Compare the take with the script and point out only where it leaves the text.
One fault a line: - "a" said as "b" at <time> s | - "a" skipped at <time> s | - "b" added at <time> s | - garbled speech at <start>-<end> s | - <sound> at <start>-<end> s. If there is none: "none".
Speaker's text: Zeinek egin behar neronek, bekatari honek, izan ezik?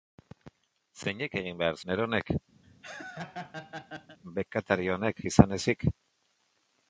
- laugh at 2.6-4.2 s